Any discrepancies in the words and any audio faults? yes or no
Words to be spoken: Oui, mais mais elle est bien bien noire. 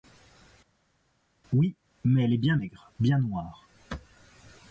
yes